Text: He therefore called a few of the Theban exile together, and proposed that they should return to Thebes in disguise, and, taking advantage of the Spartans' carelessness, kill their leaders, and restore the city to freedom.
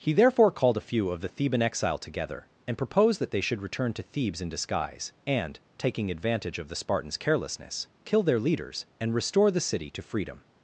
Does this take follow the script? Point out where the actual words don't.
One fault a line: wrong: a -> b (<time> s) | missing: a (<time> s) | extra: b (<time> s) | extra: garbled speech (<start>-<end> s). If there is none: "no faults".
no faults